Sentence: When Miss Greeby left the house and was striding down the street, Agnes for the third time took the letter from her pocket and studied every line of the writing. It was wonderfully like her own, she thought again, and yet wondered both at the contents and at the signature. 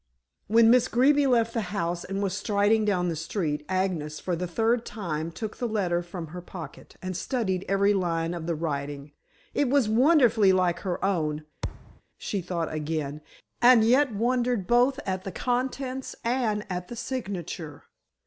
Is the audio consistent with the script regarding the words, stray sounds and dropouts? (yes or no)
no